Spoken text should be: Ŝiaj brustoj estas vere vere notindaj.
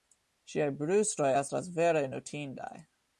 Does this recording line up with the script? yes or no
no